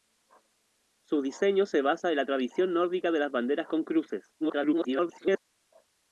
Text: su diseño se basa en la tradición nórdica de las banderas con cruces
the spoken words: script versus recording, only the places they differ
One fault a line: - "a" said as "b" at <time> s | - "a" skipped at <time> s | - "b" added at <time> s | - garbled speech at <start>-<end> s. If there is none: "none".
- garbled speech at 4.4-5.4 s